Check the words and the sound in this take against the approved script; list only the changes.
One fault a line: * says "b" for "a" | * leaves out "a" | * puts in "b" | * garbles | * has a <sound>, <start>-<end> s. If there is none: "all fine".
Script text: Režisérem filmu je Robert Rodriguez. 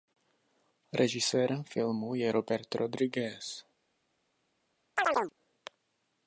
* has a chirp, 5.0-5.3 s